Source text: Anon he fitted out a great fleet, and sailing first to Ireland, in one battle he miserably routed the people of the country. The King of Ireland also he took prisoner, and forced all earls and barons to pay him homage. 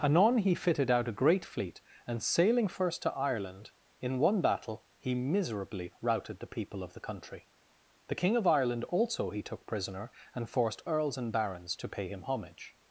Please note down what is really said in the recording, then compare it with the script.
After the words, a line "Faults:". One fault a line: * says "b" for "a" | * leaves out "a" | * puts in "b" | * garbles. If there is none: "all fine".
Anon he fitted out a great fleet, and sailing first to Ireland, in one battle he miserably routed the people of the country. The King of Ireland also he took prisoner, and forced earls and barons to pay him homage.
Faults:
* leaves out "all"